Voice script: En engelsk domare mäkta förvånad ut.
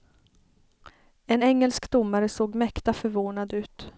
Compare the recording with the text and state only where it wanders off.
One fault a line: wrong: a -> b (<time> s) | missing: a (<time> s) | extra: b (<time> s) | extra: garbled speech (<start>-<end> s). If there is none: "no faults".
extra: såg (2.3 s)